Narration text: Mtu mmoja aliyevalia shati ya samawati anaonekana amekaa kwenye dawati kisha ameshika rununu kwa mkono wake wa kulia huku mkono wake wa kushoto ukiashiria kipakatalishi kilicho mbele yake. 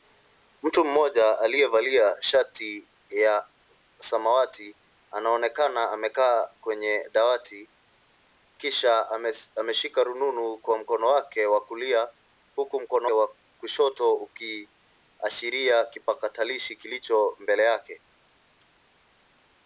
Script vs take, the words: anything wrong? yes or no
yes